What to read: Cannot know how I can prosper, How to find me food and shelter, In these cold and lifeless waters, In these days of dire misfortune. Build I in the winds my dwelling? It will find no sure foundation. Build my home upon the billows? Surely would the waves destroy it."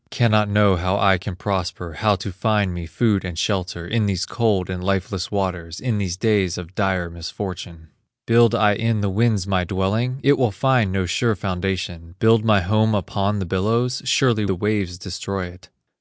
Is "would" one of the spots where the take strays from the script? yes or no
yes